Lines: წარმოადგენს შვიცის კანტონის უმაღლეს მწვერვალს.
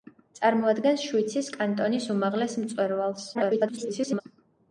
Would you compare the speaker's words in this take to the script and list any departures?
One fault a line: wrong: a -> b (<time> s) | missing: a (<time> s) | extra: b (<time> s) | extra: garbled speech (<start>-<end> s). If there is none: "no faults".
extra: garbled speech (3.3-4.2 s)